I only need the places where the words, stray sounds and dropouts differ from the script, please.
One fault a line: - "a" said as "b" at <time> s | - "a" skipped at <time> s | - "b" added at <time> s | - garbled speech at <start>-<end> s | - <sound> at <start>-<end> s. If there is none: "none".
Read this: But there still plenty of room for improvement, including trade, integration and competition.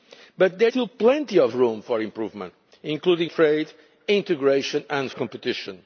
none